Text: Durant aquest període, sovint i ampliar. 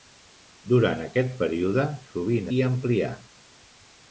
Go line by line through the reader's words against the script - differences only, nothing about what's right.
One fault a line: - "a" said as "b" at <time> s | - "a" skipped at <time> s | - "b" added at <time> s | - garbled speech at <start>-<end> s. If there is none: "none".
none